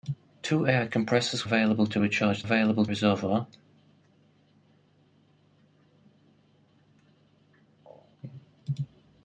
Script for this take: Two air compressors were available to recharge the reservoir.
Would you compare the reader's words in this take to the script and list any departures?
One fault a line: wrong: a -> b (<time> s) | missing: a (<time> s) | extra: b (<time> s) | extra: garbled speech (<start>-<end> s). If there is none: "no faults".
missing: were (1.5 s)
wrong: the -> available (2.4 s)